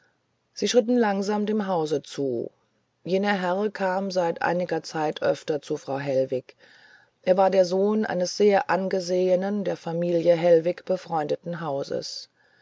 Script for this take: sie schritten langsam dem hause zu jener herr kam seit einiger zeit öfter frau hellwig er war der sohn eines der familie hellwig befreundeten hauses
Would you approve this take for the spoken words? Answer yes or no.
no